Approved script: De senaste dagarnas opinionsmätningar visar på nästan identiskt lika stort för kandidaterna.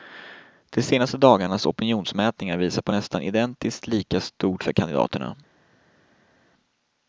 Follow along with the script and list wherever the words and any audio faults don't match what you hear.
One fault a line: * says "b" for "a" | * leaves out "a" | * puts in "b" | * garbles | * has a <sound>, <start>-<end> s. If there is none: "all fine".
all fine